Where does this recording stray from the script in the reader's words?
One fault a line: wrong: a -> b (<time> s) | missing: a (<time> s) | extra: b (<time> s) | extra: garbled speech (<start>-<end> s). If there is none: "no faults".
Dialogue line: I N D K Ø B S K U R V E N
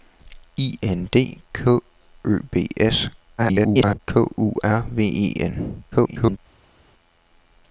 extra: garbled speech (3.4-4.0 s)
extra: garbled speech (5.9-6.4 s)